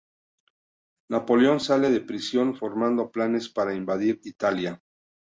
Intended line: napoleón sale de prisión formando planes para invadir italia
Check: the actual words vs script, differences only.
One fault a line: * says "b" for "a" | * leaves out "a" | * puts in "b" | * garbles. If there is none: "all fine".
all fine